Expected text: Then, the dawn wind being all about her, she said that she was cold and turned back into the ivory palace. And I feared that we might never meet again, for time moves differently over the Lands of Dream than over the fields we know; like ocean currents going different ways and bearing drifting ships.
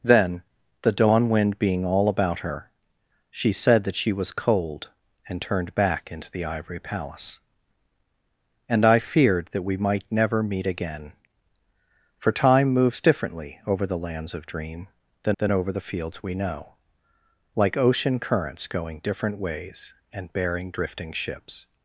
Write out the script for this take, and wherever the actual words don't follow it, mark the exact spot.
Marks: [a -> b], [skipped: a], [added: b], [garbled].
Then, the dawn wind being all about her, she said that she was cold and turned back into the ivory palace. And I feared that we might never meet again, for time moves differently over the Lands of Dream than [added: than] over the fields we know; like ocean currents going different ways and bearing drifting ships.